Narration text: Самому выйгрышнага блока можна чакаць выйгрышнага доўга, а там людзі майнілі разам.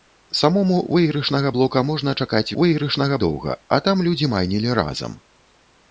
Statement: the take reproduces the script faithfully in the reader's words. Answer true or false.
true